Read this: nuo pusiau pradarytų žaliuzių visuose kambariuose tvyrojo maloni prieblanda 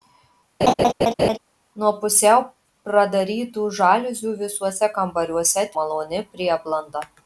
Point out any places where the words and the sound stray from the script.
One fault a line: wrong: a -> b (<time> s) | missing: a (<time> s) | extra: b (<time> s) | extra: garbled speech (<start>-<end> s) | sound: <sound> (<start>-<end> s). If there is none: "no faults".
sound: laugh (0.6-1.4 s)
missing: tvyrojo (5.7 s)